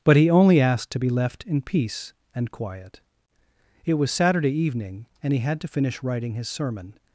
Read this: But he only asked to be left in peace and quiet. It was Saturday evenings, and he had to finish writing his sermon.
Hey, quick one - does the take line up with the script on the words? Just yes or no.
no